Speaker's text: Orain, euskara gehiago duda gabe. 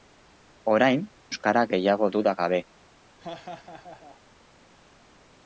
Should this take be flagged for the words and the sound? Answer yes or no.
yes